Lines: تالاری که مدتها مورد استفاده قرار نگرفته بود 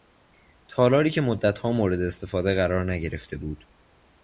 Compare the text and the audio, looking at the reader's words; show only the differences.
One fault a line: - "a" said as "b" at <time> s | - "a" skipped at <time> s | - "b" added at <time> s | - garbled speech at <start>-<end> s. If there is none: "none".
none